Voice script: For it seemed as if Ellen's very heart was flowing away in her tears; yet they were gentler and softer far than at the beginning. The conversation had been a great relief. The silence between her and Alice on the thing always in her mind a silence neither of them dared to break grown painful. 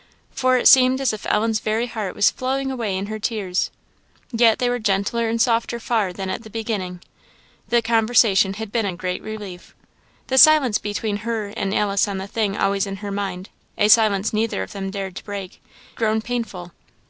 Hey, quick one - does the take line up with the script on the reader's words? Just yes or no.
yes